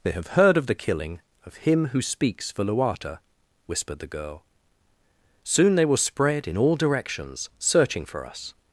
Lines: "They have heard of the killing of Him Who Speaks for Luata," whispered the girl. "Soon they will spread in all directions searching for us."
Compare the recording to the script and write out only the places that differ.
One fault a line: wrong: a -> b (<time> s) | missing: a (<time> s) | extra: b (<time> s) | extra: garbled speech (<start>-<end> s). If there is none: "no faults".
no faults